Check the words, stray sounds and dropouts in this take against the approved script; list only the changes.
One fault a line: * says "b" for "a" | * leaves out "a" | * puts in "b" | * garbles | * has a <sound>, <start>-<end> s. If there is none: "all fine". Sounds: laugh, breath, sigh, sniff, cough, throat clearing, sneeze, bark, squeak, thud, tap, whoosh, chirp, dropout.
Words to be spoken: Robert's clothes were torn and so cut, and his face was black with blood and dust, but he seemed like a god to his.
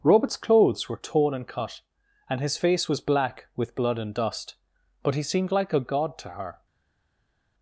* leaves out "so"
* says "her" for "his"